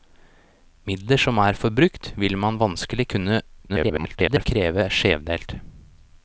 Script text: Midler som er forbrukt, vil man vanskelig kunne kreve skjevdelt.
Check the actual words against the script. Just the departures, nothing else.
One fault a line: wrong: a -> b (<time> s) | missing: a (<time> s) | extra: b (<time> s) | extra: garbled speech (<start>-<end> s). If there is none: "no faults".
extra: garbled speech (3.7-4.5 s)